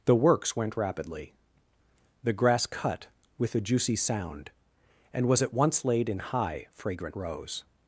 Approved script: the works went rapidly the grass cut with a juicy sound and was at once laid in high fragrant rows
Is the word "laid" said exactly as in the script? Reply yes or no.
yes